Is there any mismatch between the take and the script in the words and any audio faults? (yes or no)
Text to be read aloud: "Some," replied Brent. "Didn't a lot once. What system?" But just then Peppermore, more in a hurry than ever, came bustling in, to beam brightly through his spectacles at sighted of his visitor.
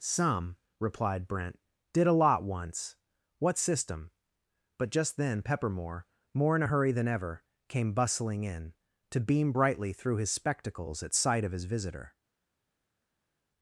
yes